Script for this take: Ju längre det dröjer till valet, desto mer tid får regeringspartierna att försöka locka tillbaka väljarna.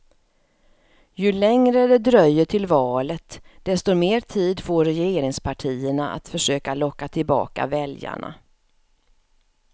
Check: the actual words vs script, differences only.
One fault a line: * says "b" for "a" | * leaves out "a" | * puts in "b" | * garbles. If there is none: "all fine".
all fine